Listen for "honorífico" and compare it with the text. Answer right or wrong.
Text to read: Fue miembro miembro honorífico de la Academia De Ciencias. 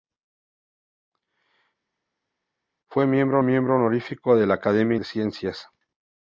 right